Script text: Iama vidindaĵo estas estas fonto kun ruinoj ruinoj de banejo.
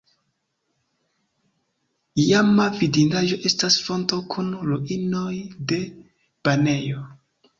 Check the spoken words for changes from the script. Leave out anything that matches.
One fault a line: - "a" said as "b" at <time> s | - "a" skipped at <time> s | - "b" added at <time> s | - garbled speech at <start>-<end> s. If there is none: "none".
- "estas" skipped at 3.8 s
- "ruinoj" skipped at 5.3 s